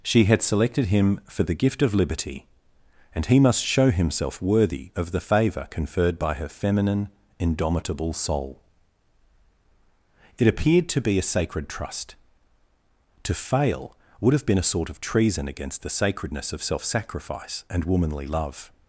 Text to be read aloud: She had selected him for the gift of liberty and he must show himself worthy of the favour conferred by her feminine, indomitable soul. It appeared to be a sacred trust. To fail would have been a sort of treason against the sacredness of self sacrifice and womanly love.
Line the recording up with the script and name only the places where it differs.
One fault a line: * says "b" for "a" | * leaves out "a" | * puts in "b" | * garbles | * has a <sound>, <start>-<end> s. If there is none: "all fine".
all fine